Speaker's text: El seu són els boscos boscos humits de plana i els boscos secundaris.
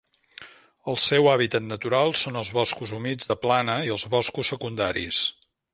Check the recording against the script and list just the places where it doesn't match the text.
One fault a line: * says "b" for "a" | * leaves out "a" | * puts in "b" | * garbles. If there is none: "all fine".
* puts in "hàbitat natural"
* leaves out "boscos"